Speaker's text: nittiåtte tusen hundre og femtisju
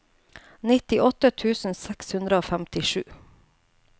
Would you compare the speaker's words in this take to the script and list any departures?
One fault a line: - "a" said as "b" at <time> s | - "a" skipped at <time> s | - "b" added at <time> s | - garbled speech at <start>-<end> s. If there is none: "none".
- "seks" added at 1.8 s